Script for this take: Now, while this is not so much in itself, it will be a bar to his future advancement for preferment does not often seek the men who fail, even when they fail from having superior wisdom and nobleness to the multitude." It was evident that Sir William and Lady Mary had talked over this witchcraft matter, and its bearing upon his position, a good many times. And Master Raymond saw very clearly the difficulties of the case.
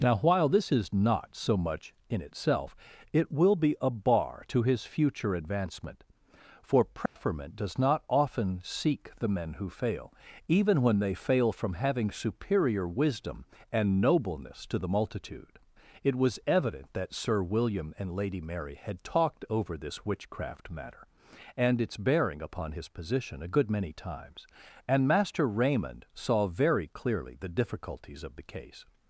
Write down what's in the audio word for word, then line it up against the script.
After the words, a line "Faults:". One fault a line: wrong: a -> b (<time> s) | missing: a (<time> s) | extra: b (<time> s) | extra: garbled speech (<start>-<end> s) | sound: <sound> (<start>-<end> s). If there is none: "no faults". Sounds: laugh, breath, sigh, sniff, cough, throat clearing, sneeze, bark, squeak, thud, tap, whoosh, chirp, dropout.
Now, while this is not so much in itself, it will be a bar to his future advancement for preferment does not often seek the men who fail, even when they fail from having superior wisdom and nobleness to the multitude." It was evident that Sir William and Lady Mary had talked over this witchcraft matter, and its bearing upon his position, a good many times. And Master Raymond saw very clearly the difficulties of the case.
Faults:
sound: dropout (7.1-7.2 s)